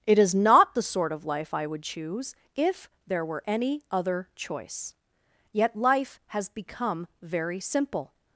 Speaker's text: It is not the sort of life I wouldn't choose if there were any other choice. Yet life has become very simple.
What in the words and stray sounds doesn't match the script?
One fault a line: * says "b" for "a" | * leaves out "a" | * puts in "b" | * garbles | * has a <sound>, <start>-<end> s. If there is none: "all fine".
* says "would" for "wouldn't"